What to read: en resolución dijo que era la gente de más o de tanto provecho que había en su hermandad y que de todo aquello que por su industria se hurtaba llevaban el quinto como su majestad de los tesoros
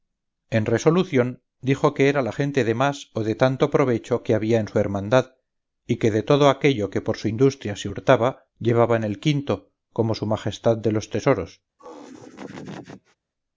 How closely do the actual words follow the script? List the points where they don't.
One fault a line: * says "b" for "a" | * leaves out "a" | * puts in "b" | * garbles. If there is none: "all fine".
all fine